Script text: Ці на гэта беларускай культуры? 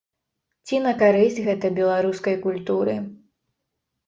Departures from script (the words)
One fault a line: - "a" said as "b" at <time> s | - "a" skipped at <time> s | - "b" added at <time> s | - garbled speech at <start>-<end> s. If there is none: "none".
- "карысць" added at 1.0 s